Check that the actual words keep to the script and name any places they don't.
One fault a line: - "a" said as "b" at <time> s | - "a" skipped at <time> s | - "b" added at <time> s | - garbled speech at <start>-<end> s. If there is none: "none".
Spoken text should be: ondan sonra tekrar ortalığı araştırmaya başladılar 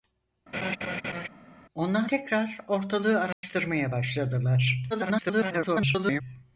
- "sonra" skipped at 2.1 s
- garbled speech at 4.9-6.2 s